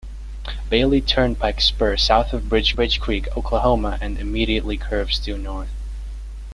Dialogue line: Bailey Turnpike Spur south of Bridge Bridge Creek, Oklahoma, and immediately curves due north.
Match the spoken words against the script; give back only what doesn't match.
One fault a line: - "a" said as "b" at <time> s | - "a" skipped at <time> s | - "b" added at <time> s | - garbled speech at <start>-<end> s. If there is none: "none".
none